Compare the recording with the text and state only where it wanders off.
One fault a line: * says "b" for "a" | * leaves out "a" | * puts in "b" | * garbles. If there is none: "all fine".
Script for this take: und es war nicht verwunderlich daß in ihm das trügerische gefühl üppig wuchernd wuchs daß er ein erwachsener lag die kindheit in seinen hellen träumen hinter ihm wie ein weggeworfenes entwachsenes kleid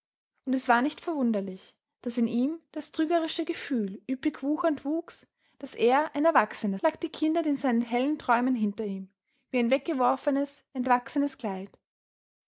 all fine